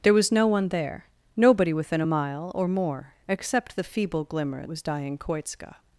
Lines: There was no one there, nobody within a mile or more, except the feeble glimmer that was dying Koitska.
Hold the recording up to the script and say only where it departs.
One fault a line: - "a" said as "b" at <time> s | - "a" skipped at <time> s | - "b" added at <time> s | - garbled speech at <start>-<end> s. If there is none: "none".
- "that" skipped at 4.6 s